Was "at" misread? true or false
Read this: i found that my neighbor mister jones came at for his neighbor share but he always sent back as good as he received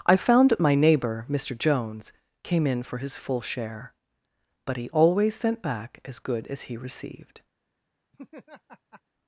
true